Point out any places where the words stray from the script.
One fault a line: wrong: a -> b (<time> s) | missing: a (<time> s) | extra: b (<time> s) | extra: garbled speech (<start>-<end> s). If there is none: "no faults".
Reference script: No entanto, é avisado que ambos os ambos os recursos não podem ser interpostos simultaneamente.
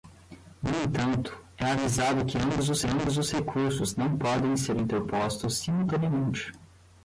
no faults